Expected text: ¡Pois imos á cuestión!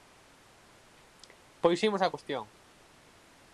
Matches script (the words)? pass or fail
pass